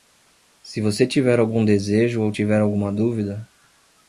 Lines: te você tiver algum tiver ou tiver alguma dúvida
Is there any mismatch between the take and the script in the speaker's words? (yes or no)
yes